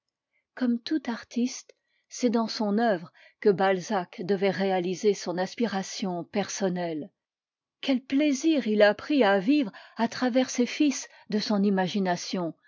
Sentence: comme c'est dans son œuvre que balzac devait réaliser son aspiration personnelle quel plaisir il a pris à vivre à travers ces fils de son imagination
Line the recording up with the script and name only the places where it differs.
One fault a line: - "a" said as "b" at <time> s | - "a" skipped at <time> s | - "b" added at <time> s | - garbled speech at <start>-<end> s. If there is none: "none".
- "tout artiste" added at 0.8 s